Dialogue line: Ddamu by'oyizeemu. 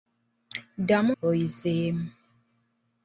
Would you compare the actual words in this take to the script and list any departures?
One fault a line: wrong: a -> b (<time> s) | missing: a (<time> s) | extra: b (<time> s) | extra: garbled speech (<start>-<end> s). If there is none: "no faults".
no faults